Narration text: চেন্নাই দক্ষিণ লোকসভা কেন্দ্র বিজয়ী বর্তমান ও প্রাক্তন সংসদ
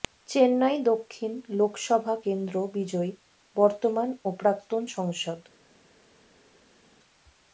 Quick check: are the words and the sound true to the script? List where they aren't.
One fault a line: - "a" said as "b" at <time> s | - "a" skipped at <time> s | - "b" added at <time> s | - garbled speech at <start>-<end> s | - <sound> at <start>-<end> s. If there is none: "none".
none